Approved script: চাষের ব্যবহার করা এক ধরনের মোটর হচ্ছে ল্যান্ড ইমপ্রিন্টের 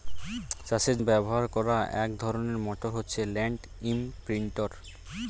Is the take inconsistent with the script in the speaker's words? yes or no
no